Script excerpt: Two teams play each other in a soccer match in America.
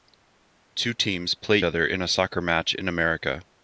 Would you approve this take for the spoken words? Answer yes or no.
no